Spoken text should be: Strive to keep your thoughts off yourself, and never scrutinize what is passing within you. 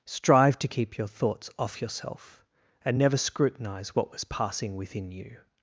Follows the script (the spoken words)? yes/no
no